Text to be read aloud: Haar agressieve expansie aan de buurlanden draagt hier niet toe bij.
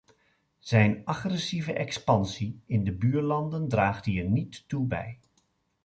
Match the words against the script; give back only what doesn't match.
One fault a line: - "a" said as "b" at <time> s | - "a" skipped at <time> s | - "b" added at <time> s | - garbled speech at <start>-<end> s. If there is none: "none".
- "Haar" said as "Zijn" at 0.6 s
- "aan" said as "in" at 2.6 s